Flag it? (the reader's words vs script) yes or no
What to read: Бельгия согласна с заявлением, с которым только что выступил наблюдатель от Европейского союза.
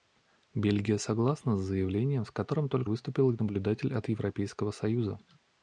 yes